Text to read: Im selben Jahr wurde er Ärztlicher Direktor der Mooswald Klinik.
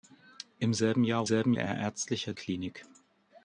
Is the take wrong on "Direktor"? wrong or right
wrong